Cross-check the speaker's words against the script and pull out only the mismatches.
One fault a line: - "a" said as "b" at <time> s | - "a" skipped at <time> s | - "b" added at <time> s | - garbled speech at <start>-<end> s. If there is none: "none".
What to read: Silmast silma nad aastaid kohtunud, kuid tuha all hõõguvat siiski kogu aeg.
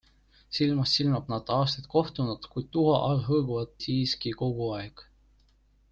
none